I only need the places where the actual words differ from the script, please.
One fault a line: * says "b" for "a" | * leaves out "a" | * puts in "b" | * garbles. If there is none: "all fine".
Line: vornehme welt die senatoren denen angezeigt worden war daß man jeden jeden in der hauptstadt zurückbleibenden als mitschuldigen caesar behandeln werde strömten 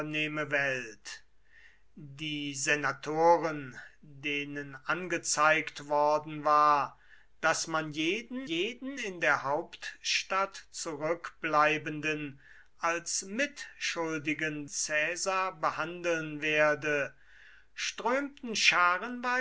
all fine